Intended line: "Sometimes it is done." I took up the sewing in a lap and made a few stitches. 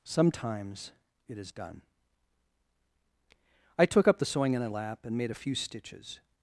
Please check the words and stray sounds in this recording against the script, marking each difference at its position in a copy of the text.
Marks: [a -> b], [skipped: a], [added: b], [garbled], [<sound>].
"Sometimes it is done." I took up the sewing in a lap and made a few stitches.